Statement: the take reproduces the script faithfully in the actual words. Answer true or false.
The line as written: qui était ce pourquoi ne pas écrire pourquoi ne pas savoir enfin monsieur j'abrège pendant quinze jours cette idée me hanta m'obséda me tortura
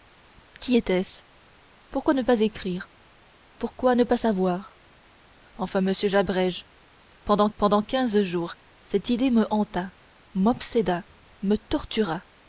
false